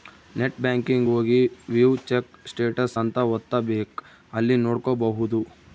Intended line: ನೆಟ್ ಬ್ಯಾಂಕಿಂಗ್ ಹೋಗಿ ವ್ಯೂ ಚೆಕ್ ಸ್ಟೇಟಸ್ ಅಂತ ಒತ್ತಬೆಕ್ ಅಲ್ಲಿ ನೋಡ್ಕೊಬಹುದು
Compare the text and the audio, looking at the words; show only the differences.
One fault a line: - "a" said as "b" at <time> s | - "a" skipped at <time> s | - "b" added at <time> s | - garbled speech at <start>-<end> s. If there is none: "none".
none